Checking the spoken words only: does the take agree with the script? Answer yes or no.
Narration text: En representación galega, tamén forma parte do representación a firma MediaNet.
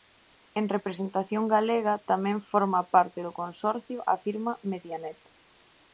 no